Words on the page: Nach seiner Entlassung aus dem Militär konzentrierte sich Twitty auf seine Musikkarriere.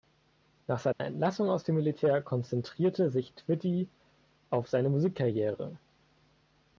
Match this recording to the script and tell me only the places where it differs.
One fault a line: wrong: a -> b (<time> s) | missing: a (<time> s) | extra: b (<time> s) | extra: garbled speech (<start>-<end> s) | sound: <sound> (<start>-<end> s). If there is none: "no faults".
sound: dropout (0.9-1.0 s)